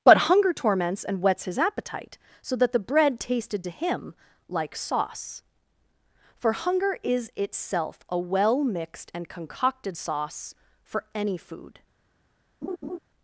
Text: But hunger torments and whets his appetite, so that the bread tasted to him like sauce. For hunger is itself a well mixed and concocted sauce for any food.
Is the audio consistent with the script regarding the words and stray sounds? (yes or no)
no